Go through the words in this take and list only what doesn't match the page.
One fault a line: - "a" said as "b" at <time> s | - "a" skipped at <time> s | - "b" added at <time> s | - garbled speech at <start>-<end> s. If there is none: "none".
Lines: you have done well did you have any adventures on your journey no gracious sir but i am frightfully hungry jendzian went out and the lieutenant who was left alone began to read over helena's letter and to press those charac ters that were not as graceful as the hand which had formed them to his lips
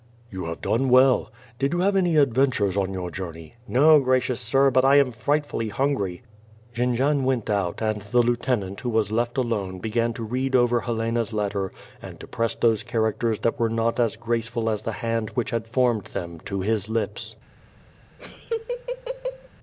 none